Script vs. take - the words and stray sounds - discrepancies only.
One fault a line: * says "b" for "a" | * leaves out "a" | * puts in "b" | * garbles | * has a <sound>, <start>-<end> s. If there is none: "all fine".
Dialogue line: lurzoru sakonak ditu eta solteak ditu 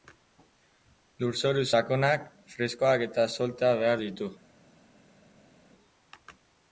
* says "freskoak" for "ditu"
* puts in "behar"